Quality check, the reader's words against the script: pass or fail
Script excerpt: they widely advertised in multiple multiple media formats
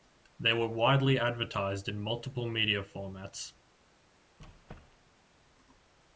fail